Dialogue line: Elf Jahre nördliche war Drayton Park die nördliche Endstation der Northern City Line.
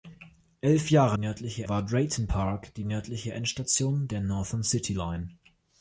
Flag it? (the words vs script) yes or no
no